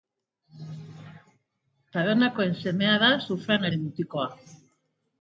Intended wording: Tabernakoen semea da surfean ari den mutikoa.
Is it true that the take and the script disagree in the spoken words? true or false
true